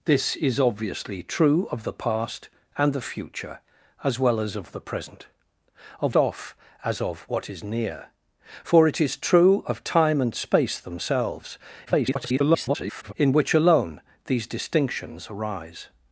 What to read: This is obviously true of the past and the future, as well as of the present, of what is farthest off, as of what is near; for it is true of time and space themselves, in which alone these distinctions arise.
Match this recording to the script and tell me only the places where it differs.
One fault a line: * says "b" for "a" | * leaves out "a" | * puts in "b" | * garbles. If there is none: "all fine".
* leaves out "what is farthest"
* garbles